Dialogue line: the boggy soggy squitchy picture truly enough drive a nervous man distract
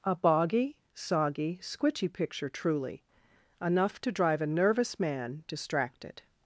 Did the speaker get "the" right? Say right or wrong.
wrong